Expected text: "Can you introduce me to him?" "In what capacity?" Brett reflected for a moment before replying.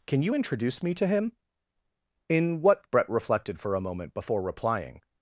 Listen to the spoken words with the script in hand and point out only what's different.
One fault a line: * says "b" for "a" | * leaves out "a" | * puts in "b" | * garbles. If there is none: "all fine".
* leaves out "capacity"